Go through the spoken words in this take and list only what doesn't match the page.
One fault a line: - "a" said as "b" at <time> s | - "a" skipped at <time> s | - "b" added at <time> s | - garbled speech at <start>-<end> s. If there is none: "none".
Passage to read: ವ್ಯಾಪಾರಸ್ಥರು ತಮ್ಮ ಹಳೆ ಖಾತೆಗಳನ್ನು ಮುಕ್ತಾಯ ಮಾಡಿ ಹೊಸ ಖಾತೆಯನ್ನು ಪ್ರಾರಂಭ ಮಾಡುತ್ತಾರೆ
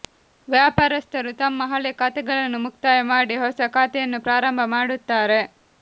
none